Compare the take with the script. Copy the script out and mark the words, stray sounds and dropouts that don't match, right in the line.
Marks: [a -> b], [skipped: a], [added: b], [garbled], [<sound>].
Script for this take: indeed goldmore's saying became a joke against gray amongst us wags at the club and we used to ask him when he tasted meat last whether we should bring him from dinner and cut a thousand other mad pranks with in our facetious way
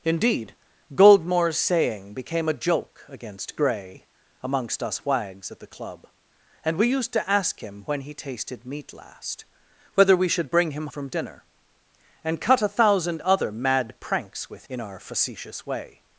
indeed goldmore's saying became a joke against gray amongst us wags at the club and we used to ask him when he tasted meat last whether we should bring him from dinner and cut a thousand other mad pranks with in our facetious way